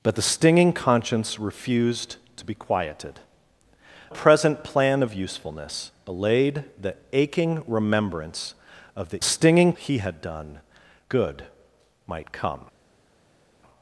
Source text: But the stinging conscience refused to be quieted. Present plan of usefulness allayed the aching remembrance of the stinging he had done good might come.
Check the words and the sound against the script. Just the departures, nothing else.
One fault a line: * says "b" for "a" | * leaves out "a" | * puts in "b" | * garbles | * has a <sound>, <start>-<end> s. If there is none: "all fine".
all fine